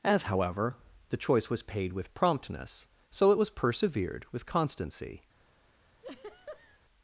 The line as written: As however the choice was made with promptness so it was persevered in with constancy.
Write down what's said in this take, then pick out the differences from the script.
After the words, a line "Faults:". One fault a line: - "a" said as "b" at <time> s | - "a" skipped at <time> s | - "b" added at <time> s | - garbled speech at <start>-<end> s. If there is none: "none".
As however the choice was paid with promptness so it was persevered with constancy.
Faults:
- "made" said as "paid" at 1.6 s
- "in" skipped at 4.2 s